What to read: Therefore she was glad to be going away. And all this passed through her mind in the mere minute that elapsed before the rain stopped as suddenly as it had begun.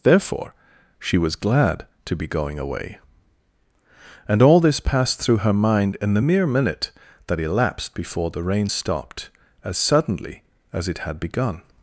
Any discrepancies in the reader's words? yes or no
no